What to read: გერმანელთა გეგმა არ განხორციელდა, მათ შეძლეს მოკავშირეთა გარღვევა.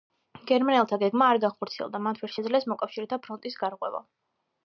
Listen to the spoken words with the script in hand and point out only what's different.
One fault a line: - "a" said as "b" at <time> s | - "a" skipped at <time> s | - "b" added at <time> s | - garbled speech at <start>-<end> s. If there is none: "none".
- "ვერ" added at 2.2 s
- "ფრონტის" added at 3.2 s